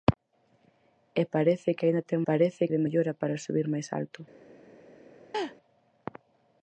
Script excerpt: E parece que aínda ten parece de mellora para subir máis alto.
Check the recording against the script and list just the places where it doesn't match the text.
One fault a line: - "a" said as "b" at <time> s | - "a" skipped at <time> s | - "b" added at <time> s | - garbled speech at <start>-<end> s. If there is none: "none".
none